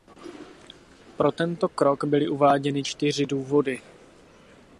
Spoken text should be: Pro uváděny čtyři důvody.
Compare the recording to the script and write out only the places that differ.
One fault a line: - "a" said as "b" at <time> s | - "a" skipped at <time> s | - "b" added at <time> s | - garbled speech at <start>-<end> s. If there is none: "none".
- "tento krok byly" added at 1.3 s